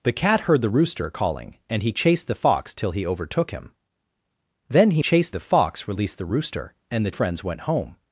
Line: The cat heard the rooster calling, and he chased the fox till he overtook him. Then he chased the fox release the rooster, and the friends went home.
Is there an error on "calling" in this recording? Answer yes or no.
no